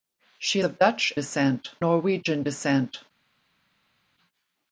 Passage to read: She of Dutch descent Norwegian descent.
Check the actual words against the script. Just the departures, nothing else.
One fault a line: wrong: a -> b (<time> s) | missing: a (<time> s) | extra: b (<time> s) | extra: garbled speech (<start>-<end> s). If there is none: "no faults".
no faults